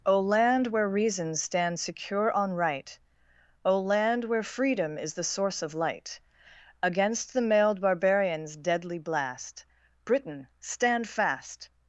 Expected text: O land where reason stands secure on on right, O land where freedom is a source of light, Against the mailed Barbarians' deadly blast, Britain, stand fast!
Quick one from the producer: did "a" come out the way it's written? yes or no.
no